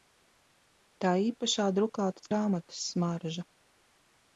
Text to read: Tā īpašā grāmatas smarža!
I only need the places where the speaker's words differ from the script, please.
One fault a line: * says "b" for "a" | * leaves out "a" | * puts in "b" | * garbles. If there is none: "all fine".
* puts in "drukātas"